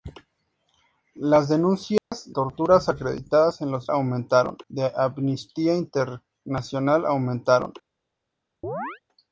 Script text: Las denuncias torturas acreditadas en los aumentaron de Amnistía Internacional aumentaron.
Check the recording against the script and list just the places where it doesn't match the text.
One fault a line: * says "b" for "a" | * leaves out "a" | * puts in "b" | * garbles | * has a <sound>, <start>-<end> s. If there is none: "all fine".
* has a dropout, 2.0-2.1 s
* has a chirp, 8.6-9.0 s